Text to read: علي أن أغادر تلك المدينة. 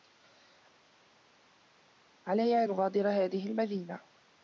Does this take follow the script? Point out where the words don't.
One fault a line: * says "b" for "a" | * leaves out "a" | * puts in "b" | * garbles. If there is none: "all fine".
* says "هذه" for "تلك"